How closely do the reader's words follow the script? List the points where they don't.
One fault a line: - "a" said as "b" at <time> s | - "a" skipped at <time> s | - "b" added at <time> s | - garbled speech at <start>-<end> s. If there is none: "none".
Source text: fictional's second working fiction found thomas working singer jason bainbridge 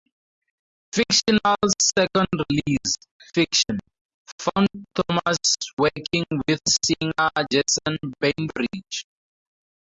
- "working" said as "release" at 2.5 s
- "with" added at 6.5 s